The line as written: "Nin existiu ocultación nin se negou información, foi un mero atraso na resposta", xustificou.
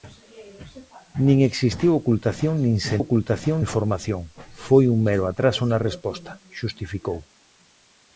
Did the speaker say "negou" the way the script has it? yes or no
no